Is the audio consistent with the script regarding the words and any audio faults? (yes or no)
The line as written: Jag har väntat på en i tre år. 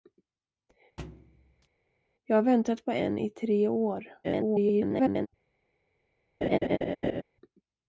no